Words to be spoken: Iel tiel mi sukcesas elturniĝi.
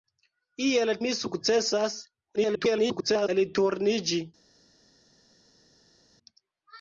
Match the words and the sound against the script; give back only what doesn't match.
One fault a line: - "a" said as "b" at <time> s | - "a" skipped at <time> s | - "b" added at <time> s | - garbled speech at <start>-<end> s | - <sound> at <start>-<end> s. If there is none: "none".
- "tiel" skipped at 0.9 s
- garbled speech at 2.4-3.3 s